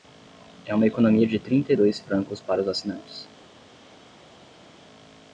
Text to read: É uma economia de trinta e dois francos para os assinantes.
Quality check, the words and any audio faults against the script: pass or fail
pass